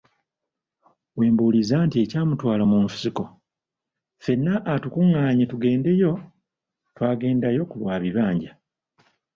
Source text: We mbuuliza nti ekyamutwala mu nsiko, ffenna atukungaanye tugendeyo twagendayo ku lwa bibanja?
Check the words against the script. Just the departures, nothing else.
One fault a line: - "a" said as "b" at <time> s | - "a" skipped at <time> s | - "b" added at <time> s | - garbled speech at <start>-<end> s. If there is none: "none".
none